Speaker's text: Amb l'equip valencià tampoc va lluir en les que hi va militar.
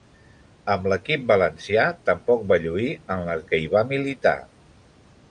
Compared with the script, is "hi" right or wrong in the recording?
right